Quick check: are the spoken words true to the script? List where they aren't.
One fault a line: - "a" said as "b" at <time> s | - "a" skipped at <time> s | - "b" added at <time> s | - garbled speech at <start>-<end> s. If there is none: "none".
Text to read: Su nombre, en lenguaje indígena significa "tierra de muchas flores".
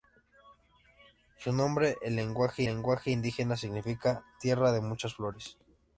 - "lenguaje" added at 2.6 s